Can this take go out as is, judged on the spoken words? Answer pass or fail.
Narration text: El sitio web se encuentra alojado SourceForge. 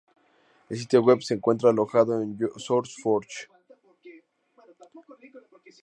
fail